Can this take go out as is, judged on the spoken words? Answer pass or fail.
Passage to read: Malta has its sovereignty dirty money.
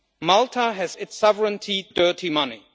pass